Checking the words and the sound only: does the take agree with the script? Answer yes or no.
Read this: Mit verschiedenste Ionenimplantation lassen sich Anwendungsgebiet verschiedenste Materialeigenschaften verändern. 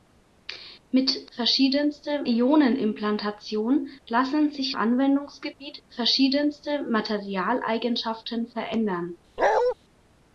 no